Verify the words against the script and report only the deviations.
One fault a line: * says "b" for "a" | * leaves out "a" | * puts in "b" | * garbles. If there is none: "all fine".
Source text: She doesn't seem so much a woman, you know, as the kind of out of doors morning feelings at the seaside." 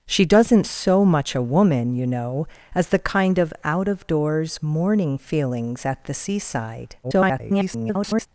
* leaves out "seem"
* garbles